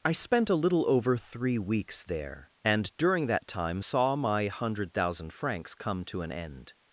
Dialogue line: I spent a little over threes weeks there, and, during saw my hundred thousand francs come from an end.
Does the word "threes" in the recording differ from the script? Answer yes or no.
yes